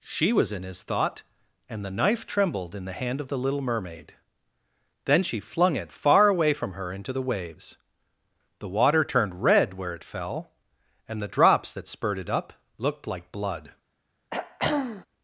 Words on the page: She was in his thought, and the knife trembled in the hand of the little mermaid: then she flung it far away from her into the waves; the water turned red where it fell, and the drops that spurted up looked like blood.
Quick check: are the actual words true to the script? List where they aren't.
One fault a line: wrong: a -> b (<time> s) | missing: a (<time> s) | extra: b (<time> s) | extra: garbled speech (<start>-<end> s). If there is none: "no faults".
no faults